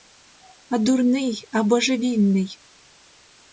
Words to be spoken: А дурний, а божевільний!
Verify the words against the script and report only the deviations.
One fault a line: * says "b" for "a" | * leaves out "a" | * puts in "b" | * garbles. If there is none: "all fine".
all fine